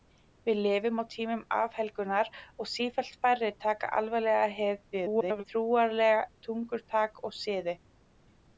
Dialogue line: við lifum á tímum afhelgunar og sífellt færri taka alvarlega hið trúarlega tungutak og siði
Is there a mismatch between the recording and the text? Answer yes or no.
yes